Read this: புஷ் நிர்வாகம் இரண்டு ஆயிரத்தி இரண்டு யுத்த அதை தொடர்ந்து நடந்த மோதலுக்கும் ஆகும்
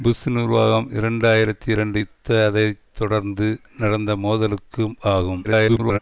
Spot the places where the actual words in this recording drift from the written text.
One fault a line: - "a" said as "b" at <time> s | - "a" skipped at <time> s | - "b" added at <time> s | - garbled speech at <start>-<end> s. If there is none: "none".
- garbled speech at 5.4-6.0 s